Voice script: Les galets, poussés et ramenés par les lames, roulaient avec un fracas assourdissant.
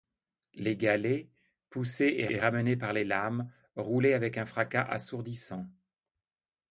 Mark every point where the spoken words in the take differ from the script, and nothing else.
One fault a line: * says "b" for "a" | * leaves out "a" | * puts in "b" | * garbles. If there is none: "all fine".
* puts in "et"